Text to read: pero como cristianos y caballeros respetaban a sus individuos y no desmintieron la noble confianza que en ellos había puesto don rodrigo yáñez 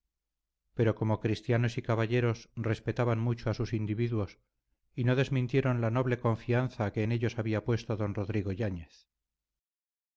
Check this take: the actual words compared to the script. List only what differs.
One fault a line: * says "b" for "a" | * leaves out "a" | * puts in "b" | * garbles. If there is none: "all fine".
* puts in "mucho"